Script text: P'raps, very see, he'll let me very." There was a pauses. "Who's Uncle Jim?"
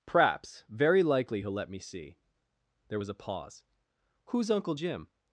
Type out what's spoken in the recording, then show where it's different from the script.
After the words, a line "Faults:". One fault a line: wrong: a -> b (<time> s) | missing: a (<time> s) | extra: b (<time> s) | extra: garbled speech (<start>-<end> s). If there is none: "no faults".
P'raps, very likely, he'll let me see." There was a pause. "Who's Uncle Jim?"
Faults:
wrong: see -> likely (1.0 s)
wrong: very -> see (1.8 s)
wrong: pauses -> pause (3.1 s)